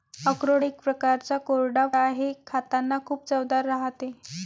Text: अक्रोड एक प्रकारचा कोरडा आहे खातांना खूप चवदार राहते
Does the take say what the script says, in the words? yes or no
yes